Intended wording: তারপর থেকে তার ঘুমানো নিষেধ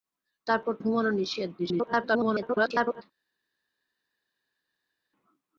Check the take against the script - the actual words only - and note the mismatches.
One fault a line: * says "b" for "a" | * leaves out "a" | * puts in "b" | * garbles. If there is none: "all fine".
* leaves out "থেকে তার"
* garbles